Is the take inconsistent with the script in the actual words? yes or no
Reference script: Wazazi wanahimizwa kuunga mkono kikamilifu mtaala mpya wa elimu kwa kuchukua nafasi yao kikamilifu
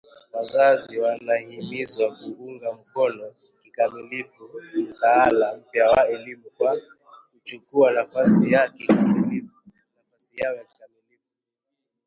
no